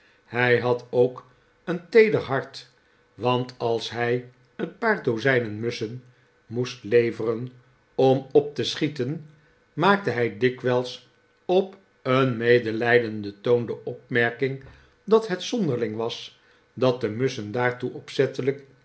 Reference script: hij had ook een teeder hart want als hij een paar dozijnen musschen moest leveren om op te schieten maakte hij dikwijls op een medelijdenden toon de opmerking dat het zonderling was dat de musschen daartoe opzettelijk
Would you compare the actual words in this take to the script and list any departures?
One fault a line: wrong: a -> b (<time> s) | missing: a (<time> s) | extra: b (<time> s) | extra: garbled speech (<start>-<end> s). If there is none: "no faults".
no faults